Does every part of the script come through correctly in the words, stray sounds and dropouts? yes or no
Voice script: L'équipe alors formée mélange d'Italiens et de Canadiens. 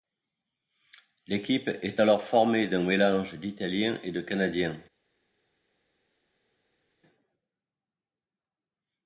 no